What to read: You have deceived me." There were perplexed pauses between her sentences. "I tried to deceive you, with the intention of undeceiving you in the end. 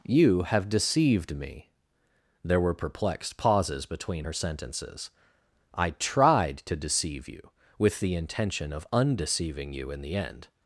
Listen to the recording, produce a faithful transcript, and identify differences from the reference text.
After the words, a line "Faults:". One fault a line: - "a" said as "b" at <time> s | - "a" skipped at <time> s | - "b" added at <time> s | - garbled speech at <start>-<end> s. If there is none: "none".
You have deceived me." There were perplexed pauses between her sentences. "I tried to deceive you, with the intention of undeceiving you in the end.
Faults:
none